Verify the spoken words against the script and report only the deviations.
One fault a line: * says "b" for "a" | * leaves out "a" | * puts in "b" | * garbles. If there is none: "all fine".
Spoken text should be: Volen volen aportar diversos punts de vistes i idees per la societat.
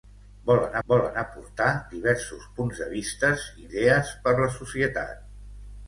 all fine